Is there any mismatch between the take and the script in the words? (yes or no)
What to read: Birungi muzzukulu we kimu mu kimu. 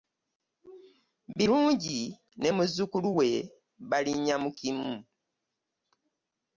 yes